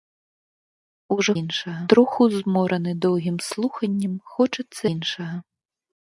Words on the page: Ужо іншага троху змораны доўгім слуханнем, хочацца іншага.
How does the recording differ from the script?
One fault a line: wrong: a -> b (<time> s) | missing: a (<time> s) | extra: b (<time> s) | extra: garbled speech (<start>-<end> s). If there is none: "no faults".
no faults